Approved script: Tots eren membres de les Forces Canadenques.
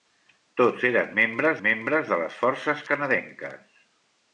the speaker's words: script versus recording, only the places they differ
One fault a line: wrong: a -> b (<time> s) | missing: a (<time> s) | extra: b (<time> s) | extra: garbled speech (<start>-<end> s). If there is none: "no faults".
extra: membres (1.6 s)